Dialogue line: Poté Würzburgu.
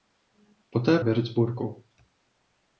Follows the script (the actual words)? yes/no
yes